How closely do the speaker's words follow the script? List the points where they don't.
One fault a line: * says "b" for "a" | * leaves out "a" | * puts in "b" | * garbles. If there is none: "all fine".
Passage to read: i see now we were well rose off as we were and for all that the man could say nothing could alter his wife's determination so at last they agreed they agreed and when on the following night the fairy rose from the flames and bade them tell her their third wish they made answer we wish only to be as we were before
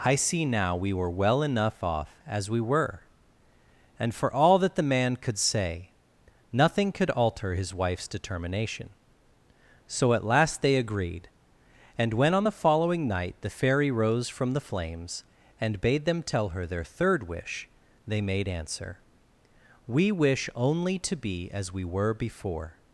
* says "enough" for "rose"
* leaves out "they agreed"